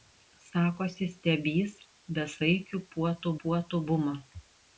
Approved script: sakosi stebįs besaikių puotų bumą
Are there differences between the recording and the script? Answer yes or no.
yes